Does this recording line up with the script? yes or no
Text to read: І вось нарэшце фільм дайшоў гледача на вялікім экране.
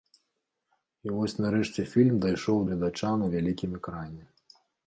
yes